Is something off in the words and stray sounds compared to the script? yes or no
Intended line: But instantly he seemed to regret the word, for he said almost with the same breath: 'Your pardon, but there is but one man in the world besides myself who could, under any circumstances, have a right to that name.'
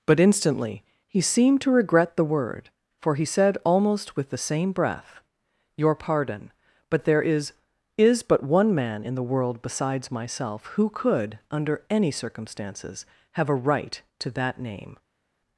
yes